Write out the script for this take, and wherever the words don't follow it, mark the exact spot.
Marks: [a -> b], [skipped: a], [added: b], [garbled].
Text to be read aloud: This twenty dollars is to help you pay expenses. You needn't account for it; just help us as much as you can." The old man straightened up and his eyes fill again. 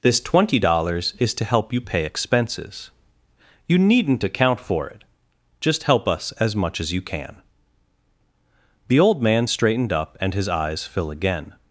This twenty dollars is to help you pay expenses. You needn't account for it; just help us as much as you can." The old man straightened up and his eyes fill again.